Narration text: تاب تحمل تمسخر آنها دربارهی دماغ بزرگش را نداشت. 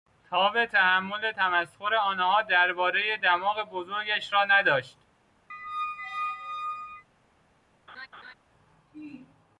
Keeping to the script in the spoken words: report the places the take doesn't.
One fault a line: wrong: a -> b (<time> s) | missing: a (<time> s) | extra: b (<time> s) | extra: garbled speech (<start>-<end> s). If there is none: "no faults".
no faults